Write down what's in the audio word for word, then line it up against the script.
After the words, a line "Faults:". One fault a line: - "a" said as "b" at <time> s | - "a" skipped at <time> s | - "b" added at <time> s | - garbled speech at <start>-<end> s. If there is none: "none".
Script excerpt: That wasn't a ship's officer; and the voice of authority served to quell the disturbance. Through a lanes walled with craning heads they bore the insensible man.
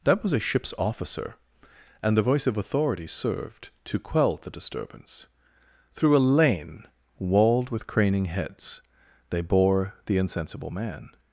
That was a ship's officer; and the voice of authority served to quell the disturbance. Through a lane walled with craning heads they bore the insensible man.
Faults:
- "wasn't" said as "was" at 0.2 s
- "lanes" said as "lane" at 6.3 s